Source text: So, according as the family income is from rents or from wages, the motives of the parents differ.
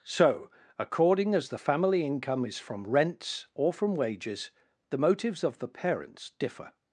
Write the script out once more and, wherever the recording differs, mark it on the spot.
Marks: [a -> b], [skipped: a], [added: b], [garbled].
So, according as the family income is from rents or from wages, the motives of the parents differ.